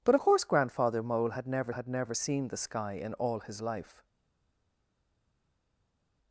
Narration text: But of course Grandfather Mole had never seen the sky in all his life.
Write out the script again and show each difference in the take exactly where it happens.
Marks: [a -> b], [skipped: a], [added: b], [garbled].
But [skipped: of] course Grandfather Mole had never [added: had never] seen the sky in all his life.